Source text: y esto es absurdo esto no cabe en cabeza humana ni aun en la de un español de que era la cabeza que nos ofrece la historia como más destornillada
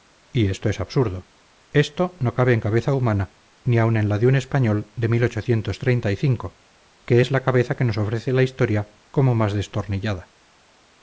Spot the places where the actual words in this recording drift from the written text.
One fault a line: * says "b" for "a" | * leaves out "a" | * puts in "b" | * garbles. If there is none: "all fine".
* says "es" for "era"